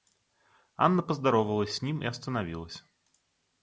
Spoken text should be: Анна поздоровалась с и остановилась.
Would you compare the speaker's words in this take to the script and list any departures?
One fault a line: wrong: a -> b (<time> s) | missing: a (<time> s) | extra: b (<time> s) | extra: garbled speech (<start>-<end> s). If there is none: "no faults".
extra: ним (1.8 s)